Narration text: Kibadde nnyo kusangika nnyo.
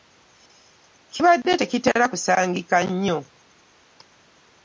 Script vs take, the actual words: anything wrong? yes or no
yes